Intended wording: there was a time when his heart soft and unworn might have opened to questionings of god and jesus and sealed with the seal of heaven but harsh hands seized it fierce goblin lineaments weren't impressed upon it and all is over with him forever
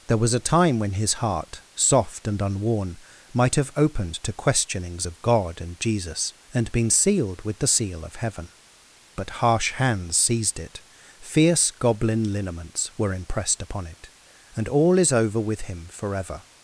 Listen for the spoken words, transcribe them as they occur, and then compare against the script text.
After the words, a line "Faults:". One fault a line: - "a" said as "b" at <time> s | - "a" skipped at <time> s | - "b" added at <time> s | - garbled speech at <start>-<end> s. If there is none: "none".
there was a time when his heart soft and unworn might have opened to questionings of god and jesus and been sealed with the seal of heaven but harsh hands seized it fierce goblin lineaments were impressed upon it and all is over with him forever
Faults:
- "been" added at 6.7 s
- "weren't" said as "were" at 13.0 s